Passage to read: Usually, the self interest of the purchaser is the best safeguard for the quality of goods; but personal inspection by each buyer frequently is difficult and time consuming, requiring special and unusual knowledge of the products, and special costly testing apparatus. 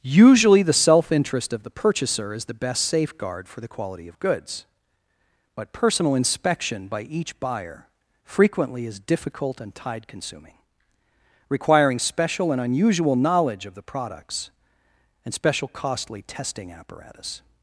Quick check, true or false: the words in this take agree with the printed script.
false